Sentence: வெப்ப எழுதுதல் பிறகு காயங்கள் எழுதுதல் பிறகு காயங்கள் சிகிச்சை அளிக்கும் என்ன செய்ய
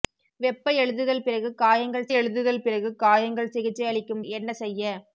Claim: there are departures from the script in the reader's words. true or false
false